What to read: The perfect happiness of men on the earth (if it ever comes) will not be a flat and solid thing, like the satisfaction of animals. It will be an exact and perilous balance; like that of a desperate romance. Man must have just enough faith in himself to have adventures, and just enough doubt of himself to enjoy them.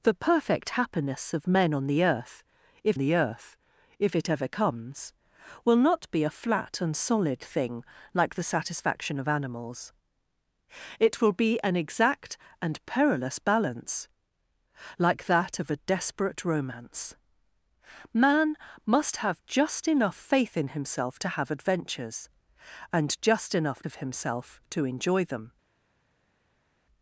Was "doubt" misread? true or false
true